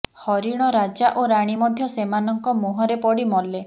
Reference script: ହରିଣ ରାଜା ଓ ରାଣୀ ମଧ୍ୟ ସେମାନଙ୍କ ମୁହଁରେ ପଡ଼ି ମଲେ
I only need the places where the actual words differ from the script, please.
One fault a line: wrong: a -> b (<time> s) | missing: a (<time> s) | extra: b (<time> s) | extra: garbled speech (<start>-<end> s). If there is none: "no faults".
no faults